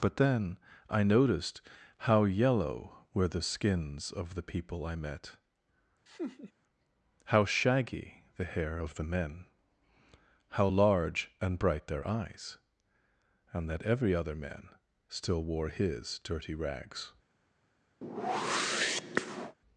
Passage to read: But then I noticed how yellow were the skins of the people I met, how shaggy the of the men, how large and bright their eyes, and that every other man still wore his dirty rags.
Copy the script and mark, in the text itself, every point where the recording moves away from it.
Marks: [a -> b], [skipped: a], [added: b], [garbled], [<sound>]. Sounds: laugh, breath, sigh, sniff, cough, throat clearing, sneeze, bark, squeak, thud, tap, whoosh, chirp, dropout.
But then I noticed how yellow were the skins of the people I met, [laugh] how shaggy the [added: hair] of the men, how large and bright their eyes, and that every other man still wore his dirty rags. [whoosh]